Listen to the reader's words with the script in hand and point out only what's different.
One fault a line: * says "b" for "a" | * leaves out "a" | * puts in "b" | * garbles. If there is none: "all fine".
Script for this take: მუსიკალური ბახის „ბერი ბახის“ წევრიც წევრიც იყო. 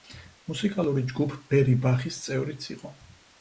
* says "ჯგუფ" for "ბახის"
* leaves out "წევრიც"